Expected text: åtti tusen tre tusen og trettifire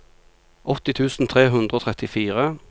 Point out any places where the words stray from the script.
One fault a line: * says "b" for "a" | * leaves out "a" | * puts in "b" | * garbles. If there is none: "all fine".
* says "hundre" for "tusen"